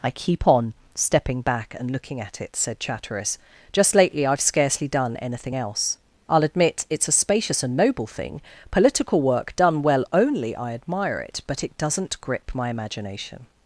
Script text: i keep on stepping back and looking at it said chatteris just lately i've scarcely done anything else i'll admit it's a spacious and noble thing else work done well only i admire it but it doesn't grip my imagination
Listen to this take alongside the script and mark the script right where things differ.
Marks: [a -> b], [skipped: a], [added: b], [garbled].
i keep on stepping back and looking at it said chatteris just lately i've scarcely done anything else i'll admit it's a spacious and noble thing [else -> political] work done well only i admire it but it doesn't grip my imagination